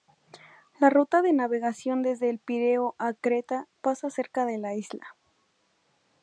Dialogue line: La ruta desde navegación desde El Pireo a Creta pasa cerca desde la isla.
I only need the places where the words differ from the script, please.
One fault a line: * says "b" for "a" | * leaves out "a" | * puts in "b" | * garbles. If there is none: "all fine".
* says "de" for "desde"
* says "de" for "desde"